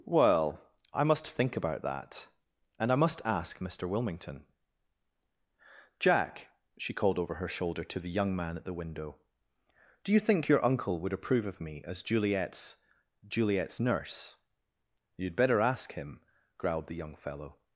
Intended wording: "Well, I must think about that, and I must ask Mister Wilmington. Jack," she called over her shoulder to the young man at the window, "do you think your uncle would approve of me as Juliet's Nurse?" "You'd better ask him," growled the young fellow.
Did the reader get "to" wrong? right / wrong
right